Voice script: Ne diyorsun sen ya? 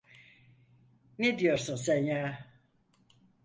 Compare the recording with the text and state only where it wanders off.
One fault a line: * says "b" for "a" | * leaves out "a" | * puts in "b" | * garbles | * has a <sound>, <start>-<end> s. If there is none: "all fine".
all fine